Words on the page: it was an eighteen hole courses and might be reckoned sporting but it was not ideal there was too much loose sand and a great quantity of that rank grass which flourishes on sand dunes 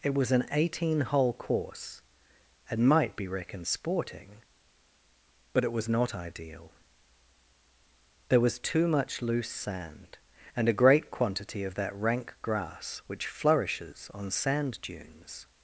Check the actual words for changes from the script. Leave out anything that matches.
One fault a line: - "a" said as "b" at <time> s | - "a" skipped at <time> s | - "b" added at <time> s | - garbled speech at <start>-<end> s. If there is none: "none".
- "courses" said as "course" at 1.3 s